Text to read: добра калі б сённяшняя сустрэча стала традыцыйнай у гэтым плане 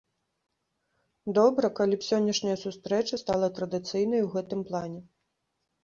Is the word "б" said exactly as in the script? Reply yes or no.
yes